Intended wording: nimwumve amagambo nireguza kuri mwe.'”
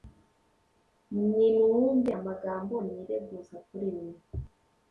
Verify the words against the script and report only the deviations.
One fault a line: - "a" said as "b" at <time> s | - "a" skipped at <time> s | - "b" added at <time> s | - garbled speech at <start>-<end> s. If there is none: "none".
none